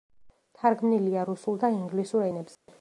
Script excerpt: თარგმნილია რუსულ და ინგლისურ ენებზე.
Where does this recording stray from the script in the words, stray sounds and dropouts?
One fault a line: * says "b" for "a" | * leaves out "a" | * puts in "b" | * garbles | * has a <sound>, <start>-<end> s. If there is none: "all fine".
* has a dropout, 2.5-2.7 s